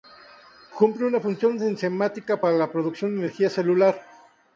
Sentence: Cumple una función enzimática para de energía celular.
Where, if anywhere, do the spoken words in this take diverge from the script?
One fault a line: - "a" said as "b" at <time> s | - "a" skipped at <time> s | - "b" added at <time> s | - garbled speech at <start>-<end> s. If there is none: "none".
- "la producción" added at 2.5 s